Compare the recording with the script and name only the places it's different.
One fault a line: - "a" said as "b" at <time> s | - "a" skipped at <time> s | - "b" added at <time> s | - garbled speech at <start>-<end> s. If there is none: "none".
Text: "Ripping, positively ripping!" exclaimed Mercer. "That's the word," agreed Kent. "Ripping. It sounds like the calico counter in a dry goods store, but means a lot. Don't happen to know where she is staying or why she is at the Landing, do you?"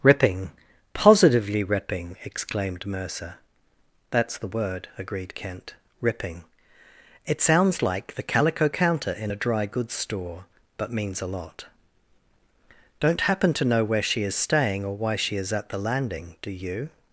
none